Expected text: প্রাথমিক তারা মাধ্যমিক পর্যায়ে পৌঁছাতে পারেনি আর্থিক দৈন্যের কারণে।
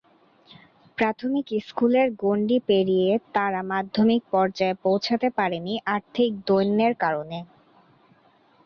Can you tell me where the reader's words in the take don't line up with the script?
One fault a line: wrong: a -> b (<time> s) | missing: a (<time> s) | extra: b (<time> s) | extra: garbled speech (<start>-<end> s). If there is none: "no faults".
extra: স্কুলের গণ্ডি পেরিয়ে (1.7 s)